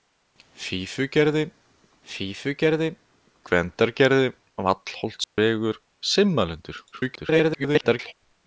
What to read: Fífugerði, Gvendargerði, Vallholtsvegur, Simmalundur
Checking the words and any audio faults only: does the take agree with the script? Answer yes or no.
no